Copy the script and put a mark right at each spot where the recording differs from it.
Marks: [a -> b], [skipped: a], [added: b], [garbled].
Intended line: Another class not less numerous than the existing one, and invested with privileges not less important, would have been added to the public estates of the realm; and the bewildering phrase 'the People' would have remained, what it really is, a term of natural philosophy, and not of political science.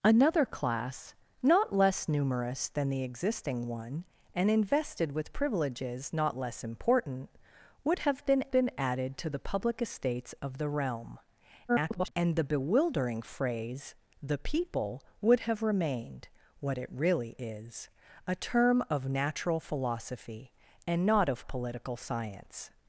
Another class not less numerous than the existing one, and invested with privileges not less important, would have been [added: been] added to the public estates of the realm; [garbled] and the bewildering phrase 'the People' would have remained, what it really is, a term of natural philosophy, and not of political science.